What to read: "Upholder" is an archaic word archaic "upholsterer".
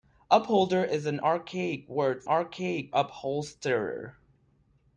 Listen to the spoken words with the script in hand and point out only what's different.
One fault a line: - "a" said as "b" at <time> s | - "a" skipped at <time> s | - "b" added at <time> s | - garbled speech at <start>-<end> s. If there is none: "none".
none